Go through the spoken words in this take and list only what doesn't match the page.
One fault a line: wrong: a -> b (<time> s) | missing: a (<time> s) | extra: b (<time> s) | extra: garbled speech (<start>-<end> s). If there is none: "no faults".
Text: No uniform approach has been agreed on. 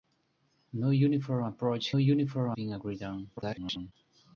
wrong: has -> uniform (2.0 s)
extra: garbled speech (3.4-3.9 s)